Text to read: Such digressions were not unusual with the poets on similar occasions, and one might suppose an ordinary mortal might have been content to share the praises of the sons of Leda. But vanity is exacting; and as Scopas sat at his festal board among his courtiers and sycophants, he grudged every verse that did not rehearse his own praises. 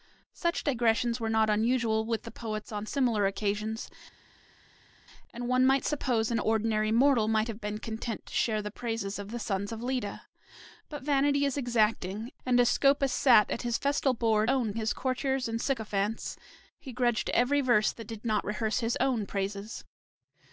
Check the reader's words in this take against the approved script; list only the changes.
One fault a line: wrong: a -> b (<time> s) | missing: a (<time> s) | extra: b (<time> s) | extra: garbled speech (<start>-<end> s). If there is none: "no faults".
wrong: among -> own (14.5 s)